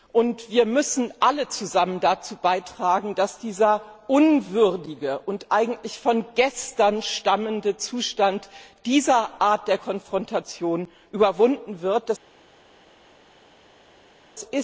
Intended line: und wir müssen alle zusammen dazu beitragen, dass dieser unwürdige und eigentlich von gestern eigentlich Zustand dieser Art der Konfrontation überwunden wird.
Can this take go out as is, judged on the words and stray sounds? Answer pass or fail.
fail